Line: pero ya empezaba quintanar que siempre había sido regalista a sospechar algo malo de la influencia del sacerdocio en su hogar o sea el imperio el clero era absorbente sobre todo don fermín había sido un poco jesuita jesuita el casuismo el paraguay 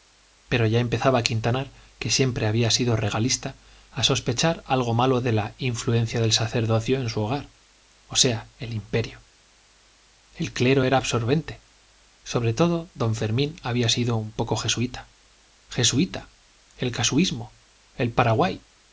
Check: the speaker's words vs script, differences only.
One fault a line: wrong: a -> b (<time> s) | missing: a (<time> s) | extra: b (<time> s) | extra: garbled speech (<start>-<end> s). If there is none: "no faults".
no faults